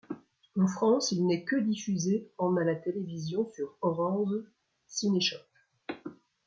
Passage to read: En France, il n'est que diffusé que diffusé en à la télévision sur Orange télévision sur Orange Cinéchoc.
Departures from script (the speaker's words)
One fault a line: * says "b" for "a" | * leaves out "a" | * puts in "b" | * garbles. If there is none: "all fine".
* leaves out "que diffusé"
* leaves out "télévision sur Orange"